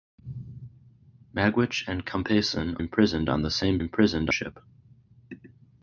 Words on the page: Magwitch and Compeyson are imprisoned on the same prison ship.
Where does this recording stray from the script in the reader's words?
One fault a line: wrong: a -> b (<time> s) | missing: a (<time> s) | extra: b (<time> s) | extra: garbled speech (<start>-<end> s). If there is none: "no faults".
missing: are (2.8 s)
wrong: prison -> imprisoned (3.8 s)